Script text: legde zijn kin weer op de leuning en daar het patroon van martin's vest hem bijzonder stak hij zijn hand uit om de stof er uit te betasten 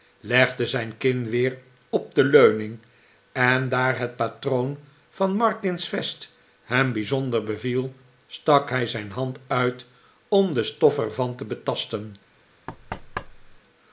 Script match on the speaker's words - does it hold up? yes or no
no